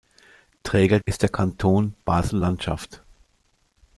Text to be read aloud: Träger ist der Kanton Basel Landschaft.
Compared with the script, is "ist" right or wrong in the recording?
right